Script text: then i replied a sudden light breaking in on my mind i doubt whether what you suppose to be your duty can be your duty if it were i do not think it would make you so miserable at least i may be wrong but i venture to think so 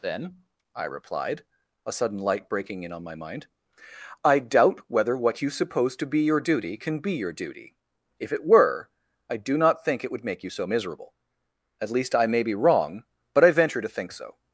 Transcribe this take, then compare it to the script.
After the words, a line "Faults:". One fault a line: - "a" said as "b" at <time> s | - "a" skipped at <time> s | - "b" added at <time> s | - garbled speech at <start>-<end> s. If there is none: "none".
then i replied a sudden light breaking in on my mind i doubt whether what you suppose to be your duty can be your duty if it were i do not think it would make you so miserable at least i may be wrong but i venture to think so
Faults:
none